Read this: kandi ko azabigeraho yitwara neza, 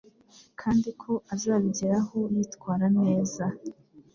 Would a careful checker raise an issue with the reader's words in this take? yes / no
no